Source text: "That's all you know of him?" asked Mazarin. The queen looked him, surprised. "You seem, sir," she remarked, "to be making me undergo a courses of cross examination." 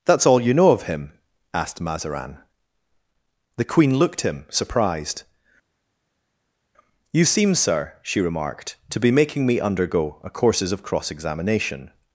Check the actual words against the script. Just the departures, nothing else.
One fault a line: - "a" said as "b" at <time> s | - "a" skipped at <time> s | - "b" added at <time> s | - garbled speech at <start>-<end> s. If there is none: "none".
none